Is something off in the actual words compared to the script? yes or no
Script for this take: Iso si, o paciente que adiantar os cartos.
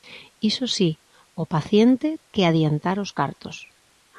no